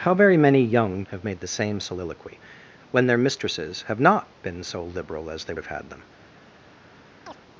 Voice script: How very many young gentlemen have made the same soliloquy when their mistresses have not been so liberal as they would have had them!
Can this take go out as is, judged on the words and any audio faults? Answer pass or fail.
fail